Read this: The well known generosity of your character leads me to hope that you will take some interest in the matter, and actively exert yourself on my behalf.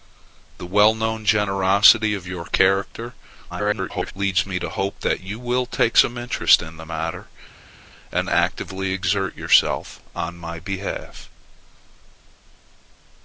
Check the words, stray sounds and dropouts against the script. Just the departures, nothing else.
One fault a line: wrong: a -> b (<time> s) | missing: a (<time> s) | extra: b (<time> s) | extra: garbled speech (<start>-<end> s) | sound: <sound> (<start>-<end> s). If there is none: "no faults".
extra: garbled speech (3.5-4.1 s)